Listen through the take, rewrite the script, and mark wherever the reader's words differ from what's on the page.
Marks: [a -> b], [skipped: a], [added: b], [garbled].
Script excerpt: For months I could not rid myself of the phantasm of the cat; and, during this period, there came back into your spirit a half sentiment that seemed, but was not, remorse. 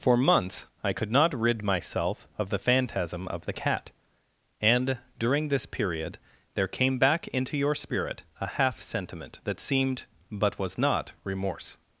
For months I could not rid myself of the phantasm of the cat; and, during this period, there came back into your spirit a half sentiment that seemed, but was not, remorse.